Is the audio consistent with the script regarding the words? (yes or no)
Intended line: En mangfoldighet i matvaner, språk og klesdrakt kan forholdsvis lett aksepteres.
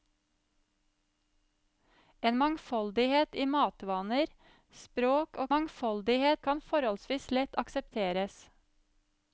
no